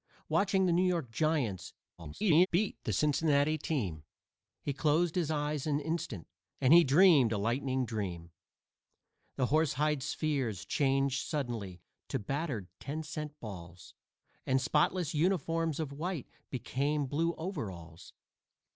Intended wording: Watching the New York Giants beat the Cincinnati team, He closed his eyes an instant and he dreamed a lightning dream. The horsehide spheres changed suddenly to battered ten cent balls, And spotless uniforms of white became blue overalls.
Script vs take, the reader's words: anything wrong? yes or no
yes